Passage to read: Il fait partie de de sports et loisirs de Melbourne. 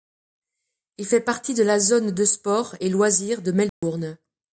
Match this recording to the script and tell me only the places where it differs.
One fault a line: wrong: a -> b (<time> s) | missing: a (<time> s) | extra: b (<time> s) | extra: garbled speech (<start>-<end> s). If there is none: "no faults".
extra: la zone (1.6 s)